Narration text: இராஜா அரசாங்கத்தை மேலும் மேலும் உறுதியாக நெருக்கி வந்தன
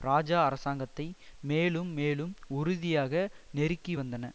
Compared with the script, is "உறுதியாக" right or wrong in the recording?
right